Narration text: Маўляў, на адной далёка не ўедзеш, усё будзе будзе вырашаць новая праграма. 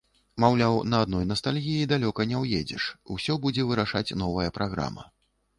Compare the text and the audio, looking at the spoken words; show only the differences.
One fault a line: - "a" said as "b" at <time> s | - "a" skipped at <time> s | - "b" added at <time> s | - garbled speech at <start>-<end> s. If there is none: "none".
- "настальгіі" added at 1.3 s
- "будзе" skipped at 3.7 s